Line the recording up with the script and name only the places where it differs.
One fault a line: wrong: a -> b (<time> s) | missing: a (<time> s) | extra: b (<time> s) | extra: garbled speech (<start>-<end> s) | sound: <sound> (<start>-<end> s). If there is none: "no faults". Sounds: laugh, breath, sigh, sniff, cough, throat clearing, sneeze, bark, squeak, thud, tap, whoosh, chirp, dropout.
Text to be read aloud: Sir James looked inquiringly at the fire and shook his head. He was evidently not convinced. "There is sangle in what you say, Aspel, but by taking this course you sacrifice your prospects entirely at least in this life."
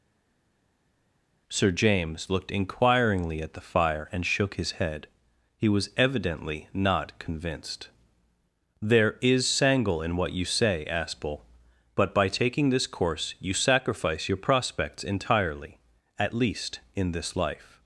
no faults